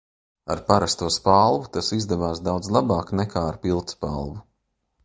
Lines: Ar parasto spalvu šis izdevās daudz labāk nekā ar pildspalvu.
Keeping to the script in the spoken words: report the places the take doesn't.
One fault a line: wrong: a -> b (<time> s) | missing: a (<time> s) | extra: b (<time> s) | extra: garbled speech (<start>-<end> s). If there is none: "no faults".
wrong: šis -> tas (1.8 s)